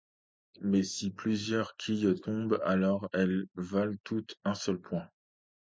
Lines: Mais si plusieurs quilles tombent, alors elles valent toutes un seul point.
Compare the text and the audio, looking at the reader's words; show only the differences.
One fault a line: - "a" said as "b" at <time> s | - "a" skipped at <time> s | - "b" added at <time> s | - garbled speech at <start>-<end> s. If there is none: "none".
none